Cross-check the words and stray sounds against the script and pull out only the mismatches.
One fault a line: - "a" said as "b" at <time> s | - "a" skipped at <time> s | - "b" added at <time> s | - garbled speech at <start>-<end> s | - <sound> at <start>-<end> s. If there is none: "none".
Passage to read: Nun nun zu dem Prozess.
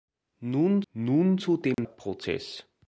- dropout at 1.7-1.8 s